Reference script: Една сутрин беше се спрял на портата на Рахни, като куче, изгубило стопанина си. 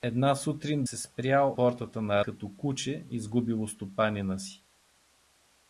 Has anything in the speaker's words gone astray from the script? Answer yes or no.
yes